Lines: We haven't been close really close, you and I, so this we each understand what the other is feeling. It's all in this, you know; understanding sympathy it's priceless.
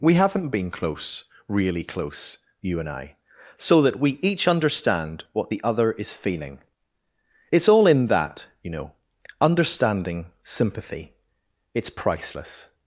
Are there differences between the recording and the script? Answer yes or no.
yes